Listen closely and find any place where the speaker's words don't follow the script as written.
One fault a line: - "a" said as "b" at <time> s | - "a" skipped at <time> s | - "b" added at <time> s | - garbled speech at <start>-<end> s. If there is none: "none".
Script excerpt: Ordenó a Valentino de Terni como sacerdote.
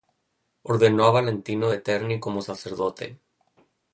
none